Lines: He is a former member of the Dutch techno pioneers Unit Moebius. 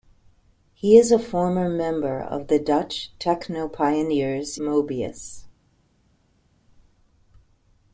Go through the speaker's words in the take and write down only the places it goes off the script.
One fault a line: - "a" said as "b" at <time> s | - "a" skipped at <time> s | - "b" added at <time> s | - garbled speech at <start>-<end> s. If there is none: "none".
- "Unit" skipped at 4.6 s